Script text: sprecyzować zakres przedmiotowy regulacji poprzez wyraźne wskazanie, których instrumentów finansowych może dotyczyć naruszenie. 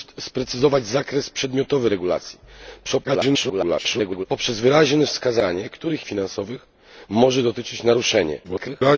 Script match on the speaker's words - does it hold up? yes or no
no